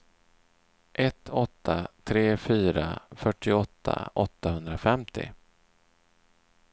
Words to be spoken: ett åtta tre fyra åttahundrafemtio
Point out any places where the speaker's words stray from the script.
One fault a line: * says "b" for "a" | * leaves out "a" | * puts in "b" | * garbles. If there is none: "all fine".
* puts in "fyrtioåtta"